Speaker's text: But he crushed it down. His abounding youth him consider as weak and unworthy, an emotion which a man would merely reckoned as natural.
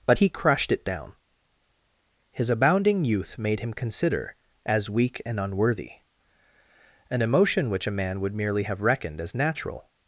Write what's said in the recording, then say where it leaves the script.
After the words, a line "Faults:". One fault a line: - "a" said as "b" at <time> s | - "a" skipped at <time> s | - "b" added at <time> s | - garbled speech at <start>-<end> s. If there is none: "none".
But he crushed it down. His abounding youth made him consider as weak and unworthy, an emotion which a man would merely have reckoned as natural.
Faults:
- "made" added at 3.4 s
- "have" added at 8.6 s